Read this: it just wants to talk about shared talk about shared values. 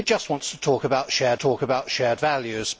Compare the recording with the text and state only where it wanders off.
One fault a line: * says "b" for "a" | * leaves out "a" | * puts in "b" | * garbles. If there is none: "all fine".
all fine